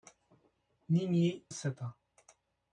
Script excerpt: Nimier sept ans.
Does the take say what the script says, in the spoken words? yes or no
yes